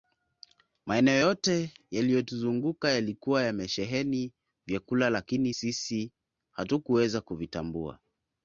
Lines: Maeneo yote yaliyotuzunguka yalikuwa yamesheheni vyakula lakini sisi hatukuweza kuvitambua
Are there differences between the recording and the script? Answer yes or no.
no